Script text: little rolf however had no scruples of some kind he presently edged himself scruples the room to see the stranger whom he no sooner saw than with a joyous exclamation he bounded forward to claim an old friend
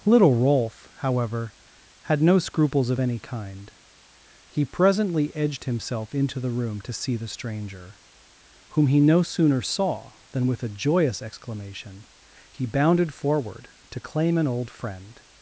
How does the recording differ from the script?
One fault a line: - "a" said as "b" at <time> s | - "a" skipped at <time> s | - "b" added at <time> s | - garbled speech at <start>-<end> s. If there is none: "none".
- "some" said as "any" at 3.0 s
- "scruples" said as "into" at 6.1 s